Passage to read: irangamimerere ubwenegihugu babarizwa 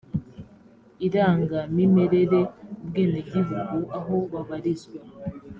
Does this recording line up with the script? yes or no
no